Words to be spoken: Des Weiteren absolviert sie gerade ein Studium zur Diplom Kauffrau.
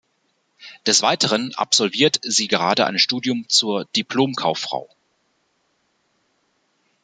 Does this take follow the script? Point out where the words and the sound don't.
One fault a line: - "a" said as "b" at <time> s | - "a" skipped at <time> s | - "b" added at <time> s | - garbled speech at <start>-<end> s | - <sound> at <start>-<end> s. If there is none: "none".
none